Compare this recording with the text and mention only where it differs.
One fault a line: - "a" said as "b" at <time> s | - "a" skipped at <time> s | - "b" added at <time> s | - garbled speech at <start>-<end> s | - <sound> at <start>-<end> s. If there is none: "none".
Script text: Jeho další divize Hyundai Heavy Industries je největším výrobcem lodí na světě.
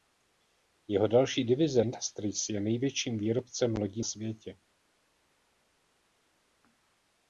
- "Hyundai Heavy" skipped at 1.8 s
- "na" skipped at 4.0 s